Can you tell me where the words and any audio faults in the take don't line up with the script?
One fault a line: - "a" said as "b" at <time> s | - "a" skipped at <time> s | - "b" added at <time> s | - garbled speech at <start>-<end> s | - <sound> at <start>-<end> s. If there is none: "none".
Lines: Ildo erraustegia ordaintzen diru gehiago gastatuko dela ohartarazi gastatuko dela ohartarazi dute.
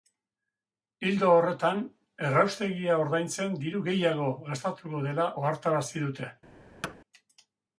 - "horretan" added at 1.3 s
- "gastatuko dela ohartarazi" skipped at 6.1 s
- thud at 6.8-7.0 s